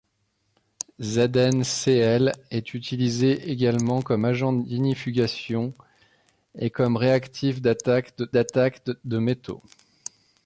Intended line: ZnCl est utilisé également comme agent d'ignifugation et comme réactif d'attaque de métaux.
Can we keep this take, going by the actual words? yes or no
no